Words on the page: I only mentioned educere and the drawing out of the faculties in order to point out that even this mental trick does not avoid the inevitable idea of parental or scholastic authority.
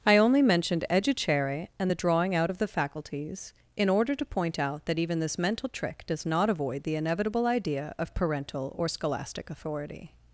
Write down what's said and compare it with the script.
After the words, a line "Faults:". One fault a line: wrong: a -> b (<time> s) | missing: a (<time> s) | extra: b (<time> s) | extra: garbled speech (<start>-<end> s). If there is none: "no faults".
I only mentioned educere and the drawing out of the faculties in order to point out that even this mental trick does not avoid the inevitable idea of parental or scholastic authority.
Faults:
no faults